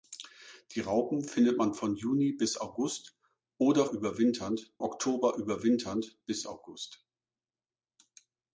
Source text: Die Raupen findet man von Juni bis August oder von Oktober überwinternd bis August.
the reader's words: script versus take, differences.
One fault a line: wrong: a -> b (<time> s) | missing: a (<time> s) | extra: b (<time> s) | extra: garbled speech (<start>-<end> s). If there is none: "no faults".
wrong: von -> überwinternd (3.9 s)